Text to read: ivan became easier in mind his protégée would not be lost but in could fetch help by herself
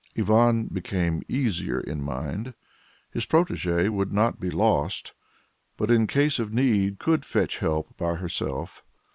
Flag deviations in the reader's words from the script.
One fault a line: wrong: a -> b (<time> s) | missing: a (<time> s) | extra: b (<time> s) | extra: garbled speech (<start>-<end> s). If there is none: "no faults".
extra: case of need (6.1 s)